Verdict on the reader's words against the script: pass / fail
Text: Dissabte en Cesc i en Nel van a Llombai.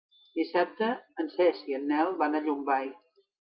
pass